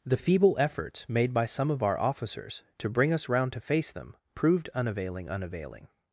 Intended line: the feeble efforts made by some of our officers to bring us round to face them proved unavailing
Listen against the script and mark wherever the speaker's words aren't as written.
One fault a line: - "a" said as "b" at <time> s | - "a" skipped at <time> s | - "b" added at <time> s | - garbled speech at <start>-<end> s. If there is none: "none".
- "unavailing" added at 5.3 s